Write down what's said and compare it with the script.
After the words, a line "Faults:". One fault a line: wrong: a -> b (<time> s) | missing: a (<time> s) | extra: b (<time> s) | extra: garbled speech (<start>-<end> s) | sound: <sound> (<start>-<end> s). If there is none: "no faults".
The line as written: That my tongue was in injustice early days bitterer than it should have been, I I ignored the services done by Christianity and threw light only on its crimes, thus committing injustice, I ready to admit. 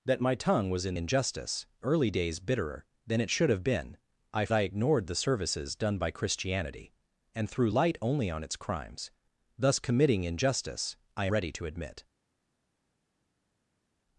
That my tongue was in injustice early days bitterer than it should have been, I I ignored the services done by Christianity and threw light only on its crimes, thus committing injustice, I ready to admit.
Faults:
no faults